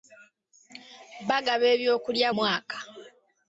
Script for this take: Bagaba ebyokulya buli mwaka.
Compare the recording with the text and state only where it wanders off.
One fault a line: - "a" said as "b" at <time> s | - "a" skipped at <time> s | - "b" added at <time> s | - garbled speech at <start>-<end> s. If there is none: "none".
- "buli" skipped at 2.3 s